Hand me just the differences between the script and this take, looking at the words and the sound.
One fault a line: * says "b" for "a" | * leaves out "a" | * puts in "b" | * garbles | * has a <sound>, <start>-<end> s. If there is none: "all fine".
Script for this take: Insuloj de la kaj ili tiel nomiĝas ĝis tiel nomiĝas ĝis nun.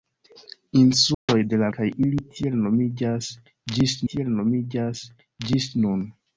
* has a dropout, 1.1-1.3 s